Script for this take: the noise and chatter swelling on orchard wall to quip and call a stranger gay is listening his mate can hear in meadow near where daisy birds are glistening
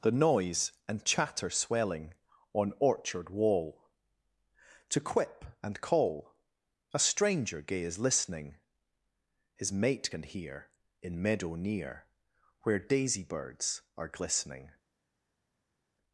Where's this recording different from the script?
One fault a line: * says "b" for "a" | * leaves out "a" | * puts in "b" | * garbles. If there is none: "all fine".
all fine